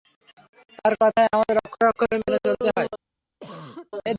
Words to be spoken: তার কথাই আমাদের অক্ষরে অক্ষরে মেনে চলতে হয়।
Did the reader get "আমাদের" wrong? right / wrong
right